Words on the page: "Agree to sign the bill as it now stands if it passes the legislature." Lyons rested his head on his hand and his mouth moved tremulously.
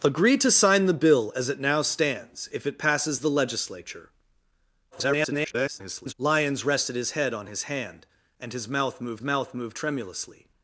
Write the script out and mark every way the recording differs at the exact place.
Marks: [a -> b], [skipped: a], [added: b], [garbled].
"Agree to sign the bill as it now stands if it passes the legislature." [garbled] Lyons rested his head on his hand and his mouth moved [added: mouth moved] tremulously.